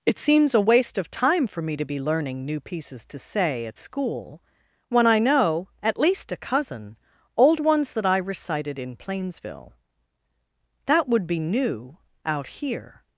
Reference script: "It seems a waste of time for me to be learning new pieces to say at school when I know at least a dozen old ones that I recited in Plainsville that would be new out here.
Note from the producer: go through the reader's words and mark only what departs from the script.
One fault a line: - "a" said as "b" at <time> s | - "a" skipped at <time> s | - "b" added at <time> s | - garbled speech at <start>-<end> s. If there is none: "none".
- "dozen" said as "cousin" at 6.4 s